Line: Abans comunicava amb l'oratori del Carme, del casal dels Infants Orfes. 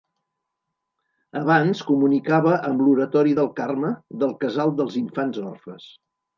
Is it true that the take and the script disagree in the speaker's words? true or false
false